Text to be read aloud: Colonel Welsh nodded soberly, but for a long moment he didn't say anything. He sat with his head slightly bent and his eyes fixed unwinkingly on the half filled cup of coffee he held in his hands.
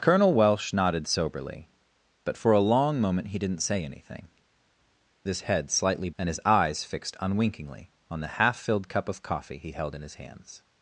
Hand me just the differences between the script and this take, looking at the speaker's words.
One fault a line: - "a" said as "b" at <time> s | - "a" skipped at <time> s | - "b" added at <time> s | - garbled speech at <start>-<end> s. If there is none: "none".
- "He sat with" skipped at 4.3 s
- "bent" skipped at 6.1 s